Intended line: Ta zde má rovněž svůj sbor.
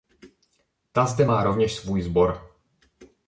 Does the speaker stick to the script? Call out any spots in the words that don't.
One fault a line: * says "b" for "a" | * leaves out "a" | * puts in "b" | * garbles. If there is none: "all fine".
all fine